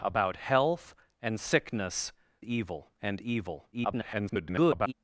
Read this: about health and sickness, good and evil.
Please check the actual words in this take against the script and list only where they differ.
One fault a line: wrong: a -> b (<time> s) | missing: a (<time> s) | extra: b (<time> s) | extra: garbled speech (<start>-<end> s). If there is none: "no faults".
wrong: good -> evil (2.4 s)
extra: garbled speech (3.7-4.9 s)